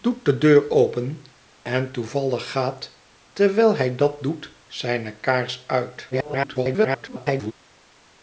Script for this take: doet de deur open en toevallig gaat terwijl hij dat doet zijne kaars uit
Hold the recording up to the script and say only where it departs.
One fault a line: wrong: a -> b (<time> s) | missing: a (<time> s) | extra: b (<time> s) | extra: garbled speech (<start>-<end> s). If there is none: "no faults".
extra: garbled speech (6.1-7.5 s)